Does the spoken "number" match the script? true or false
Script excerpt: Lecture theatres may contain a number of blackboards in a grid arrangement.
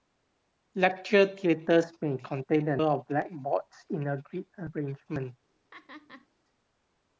false